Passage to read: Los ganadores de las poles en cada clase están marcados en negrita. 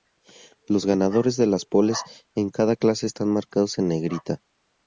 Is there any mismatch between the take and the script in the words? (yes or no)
no